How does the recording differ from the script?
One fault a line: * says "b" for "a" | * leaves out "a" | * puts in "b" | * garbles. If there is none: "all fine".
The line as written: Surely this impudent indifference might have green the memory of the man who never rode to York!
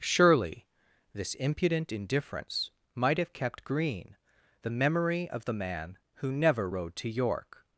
* puts in "kept"